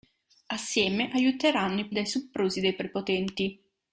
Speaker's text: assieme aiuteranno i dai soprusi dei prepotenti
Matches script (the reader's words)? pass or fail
pass